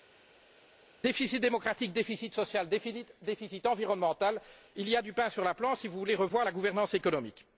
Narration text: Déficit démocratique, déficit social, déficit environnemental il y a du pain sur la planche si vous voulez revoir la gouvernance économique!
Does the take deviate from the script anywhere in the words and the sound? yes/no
no